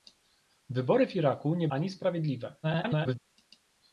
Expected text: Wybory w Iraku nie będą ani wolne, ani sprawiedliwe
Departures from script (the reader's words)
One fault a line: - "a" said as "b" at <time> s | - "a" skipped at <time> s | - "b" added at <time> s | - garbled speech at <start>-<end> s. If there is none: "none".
- "będą ani wolne" skipped at 1.7 s
- garbled speech at 2.6-3.2 s